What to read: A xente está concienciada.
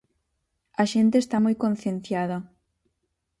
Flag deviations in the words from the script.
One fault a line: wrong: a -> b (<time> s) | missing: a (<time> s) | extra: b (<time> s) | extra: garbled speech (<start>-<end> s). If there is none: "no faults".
extra: moi (1.4 s)